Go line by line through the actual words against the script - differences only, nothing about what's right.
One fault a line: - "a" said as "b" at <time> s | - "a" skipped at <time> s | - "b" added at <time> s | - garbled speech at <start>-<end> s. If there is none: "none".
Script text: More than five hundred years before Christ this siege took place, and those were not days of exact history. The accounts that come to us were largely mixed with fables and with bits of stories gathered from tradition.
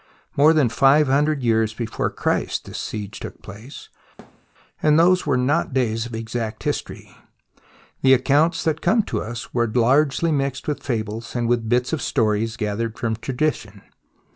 none